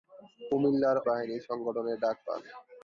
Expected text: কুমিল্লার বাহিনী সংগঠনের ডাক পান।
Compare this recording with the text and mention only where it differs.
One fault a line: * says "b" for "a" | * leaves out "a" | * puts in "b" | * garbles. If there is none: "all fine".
all fine